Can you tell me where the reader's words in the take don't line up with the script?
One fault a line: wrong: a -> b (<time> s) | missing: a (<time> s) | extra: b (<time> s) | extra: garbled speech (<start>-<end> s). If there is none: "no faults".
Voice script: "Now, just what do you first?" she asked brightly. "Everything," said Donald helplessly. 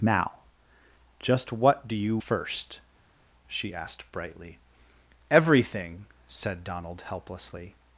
no faults